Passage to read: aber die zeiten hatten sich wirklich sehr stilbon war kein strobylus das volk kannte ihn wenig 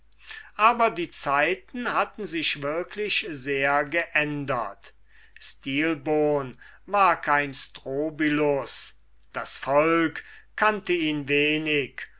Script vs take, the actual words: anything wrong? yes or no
yes